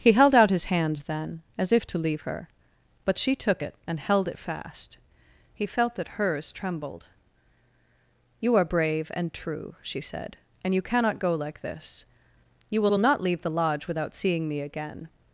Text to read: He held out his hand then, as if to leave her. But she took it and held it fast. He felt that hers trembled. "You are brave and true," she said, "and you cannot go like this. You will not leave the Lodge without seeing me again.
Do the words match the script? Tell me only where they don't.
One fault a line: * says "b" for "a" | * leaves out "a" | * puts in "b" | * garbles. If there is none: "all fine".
* puts in "will"